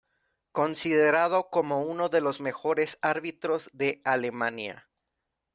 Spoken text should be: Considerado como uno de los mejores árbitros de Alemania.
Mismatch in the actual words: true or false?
false